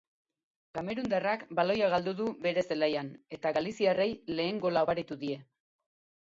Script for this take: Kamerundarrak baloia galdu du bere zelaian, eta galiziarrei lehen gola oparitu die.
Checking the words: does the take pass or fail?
pass